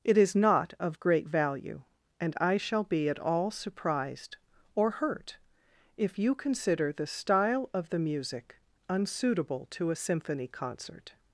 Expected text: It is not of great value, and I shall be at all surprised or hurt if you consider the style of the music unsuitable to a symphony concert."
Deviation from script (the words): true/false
false